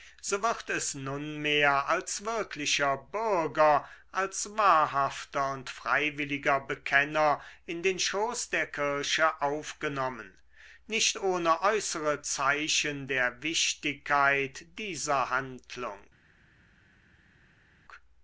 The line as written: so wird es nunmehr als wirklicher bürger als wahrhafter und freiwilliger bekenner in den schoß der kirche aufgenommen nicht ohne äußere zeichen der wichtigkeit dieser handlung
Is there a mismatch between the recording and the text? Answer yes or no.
no